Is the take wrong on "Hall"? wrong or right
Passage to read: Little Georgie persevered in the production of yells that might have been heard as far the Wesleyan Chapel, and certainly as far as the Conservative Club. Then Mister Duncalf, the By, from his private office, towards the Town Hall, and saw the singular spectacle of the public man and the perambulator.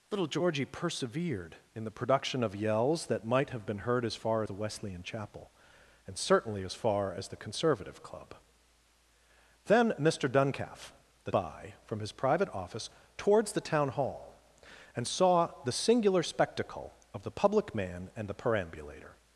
right